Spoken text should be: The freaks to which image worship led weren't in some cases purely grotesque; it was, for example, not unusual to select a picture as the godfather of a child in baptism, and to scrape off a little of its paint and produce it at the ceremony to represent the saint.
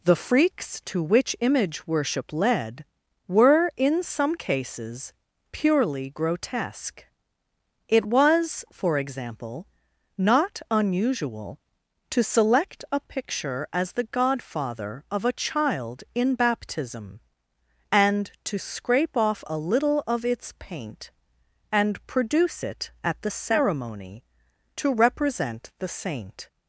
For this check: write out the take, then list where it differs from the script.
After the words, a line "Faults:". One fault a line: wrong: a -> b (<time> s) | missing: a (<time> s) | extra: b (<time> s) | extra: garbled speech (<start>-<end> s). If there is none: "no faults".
The freaks to which image worship led were in some cases purely grotesque; it was, for example, not unusual to select a picture as the godfather of a child in baptism, and to scrape off a little of its paint and produce it at the ceremony to represent the saint.
Faults:
wrong: weren't -> were (3.3 s)